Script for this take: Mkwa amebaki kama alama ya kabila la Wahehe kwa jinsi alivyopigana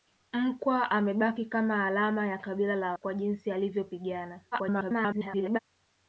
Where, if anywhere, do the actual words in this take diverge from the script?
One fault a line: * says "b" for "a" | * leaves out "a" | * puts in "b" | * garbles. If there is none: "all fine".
* leaves out "Wahehe"
* garbles